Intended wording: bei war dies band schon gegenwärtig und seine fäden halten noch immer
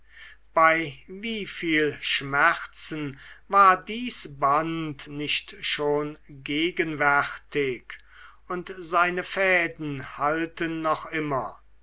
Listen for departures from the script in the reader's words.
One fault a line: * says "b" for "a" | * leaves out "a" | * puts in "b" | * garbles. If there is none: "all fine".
* puts in "wieviel schmerzen"
* puts in "nicht"